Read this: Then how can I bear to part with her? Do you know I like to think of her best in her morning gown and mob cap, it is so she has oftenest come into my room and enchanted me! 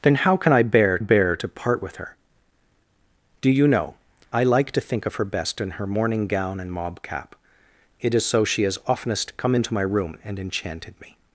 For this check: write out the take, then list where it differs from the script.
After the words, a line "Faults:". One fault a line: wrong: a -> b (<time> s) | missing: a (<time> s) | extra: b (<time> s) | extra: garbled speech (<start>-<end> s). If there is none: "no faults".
Then how can I bear bear to part with her? Do you know I like to think of her best in her morning gown and mob cap, it is so she has oftenest come into my room and enchanted me!
Faults:
extra: bear (1.0 s)